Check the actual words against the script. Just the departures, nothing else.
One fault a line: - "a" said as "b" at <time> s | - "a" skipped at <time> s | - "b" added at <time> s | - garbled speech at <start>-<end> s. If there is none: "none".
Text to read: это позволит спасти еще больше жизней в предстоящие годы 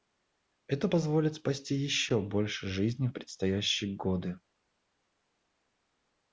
none